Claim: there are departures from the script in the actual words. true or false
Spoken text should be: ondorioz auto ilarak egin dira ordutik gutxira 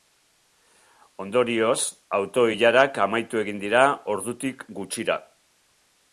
true